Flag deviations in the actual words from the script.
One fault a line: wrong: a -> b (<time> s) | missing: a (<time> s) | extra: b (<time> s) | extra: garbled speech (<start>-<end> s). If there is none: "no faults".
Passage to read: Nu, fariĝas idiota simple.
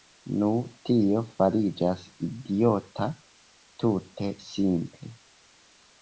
extra: tio (0.9 s)
extra: tute (3.8 s)